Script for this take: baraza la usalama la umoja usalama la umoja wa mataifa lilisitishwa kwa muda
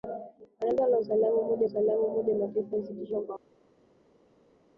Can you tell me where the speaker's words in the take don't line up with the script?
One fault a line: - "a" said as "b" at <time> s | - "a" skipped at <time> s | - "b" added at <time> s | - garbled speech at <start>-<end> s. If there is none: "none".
none